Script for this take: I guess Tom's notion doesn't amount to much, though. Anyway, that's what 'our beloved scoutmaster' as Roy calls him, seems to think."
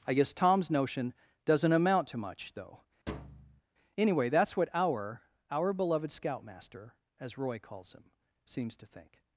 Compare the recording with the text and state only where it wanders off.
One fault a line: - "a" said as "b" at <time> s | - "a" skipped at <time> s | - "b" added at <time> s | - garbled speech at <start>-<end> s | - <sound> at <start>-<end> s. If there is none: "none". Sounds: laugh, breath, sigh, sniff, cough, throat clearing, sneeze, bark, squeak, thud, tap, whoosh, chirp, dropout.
- thud at 3.1-3.6 s
- "our" added at 5.5 s